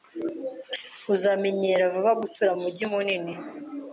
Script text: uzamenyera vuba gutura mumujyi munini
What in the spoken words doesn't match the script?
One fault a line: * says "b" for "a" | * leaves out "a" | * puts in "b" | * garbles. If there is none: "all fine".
all fine